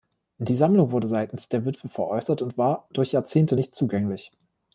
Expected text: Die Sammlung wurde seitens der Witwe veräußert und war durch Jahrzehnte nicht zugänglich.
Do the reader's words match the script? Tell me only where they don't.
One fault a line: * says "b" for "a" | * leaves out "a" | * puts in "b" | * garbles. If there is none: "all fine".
all fine